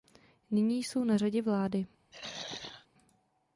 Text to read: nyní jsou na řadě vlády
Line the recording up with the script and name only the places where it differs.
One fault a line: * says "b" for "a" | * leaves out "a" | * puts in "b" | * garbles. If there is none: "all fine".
all fine